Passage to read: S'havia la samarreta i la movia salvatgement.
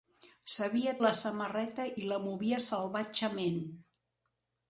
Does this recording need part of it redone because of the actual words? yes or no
no